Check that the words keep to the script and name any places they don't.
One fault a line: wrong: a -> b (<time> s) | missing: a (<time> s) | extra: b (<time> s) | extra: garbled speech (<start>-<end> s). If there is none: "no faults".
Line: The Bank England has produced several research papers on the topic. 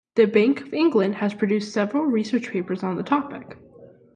extra: of (0.6 s)